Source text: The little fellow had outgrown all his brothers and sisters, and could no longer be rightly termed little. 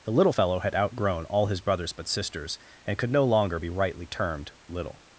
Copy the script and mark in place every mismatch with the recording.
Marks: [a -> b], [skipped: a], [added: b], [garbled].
The little fellow had outgrown all his brothers [and -> but] sisters, and could no longer be rightly termed little.